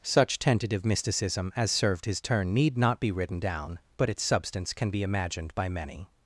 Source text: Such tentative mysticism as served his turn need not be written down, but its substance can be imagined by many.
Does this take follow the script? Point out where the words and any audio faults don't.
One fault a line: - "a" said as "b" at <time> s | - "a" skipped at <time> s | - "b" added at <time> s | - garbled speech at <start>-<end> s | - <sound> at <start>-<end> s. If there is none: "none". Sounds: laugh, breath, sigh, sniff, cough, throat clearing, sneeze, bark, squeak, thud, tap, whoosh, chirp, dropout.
none